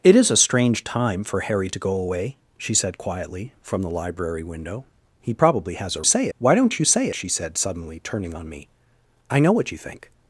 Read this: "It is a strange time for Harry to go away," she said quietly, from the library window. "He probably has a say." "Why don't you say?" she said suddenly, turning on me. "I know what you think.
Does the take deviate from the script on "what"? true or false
false